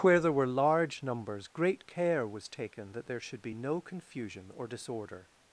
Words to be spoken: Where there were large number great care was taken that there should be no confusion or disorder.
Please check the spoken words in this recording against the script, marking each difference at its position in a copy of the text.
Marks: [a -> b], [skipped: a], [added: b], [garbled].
Where there were large [number -> numbers] great care was taken that there should be no confusion or disorder.